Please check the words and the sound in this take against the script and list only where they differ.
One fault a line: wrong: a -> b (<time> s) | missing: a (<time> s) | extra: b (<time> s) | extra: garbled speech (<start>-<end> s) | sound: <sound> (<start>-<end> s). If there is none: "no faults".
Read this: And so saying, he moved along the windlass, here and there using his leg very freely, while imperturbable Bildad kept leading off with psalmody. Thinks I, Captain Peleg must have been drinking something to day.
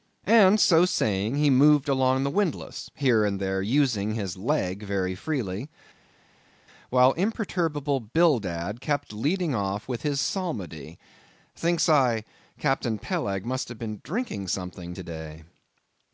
extra: his (10.0 s)